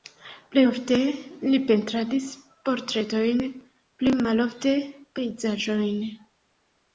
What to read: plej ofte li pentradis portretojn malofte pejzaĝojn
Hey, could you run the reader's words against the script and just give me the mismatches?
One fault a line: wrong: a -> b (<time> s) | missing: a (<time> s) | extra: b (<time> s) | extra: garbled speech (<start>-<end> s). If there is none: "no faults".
extra: pli (4.0 s)